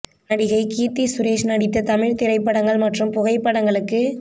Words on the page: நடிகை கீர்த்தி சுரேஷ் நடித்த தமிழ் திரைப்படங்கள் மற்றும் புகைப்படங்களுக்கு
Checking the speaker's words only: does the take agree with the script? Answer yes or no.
yes